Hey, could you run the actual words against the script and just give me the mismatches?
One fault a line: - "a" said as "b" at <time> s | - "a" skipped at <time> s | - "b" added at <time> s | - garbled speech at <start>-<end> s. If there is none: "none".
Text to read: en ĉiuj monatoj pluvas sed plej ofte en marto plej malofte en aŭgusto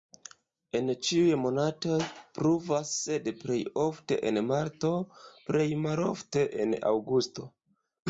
none